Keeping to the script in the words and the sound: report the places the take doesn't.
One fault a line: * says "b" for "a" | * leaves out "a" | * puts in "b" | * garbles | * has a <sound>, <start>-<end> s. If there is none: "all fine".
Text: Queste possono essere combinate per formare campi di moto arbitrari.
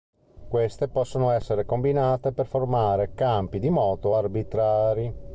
all fine